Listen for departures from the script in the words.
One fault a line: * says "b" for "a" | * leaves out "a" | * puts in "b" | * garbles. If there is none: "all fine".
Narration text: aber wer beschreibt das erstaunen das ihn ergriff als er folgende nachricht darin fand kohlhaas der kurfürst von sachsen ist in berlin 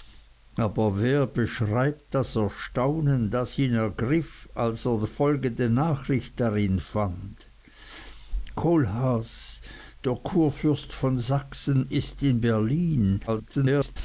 * garbles